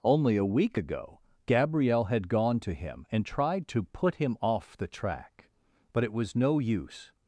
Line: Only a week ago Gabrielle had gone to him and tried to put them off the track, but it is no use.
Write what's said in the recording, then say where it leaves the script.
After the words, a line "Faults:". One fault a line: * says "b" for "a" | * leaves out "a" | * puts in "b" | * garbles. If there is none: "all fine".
Only a week ago Gabrielle had gone to him and tried to put him off the track, but it was no use.
Faults:
* says "him" for "them"
* says "was" for "is"